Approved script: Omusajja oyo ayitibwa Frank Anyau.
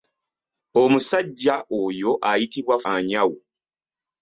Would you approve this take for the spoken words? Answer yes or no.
no